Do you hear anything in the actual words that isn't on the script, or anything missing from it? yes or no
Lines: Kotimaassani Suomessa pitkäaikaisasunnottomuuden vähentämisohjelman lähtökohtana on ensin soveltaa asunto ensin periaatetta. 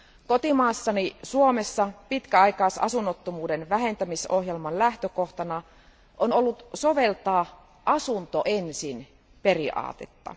yes